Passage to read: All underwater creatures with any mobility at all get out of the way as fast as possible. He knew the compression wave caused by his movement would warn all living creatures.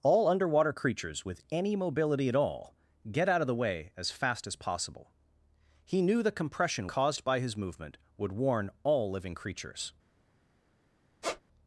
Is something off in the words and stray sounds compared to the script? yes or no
yes